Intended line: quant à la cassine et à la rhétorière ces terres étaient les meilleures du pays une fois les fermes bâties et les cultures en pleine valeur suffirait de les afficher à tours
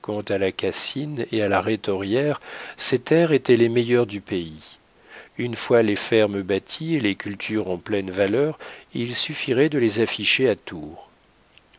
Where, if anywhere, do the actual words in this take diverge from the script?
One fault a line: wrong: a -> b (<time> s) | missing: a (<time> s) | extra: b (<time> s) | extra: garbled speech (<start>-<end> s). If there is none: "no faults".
extra: il (8.9 s)